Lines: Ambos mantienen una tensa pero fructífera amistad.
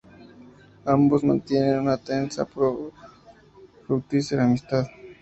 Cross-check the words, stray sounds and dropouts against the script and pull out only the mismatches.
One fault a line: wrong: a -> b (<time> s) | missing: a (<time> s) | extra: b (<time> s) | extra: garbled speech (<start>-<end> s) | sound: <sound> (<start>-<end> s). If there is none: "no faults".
no faults